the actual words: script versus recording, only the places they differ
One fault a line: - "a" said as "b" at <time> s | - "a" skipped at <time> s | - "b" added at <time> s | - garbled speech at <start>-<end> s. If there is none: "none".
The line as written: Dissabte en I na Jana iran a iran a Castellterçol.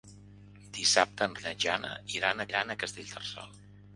none